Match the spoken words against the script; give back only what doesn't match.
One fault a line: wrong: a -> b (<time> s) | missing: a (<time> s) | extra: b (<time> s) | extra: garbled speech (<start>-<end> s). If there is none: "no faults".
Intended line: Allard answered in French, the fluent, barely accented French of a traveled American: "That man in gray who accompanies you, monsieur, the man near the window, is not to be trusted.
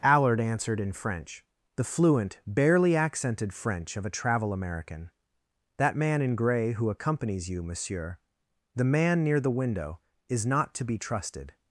wrong: traveled -> travel (4.1 s)